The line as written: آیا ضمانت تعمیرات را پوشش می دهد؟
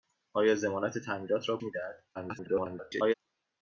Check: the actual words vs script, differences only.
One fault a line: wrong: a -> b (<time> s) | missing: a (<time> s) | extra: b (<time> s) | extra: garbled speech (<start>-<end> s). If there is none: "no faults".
missing: پوشش (1.6 s)
extra: garbled speech (2.1-3.1 s)